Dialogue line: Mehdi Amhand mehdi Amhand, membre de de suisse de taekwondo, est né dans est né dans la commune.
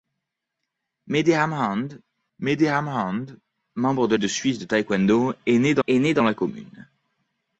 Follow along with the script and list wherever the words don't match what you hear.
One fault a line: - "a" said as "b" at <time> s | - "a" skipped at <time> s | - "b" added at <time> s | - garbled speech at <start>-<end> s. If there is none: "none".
none